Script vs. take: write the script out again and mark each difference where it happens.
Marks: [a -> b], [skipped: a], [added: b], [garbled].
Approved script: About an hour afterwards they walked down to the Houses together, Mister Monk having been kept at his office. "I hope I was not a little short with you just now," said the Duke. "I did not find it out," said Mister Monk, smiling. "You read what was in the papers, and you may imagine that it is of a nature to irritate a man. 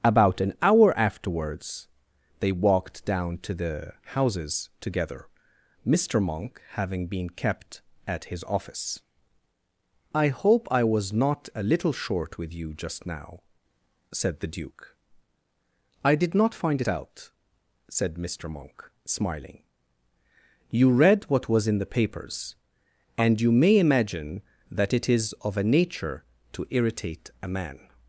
About an hour afterwards they walked down to the Houses together, Mister Monk having been kept at his office. "I hope I was not a little short with you just now," said the Duke. "I did not find it out," said Mister Monk, smiling. "You read what was in the papers, and you may imagine that it is of a nature to irritate a man.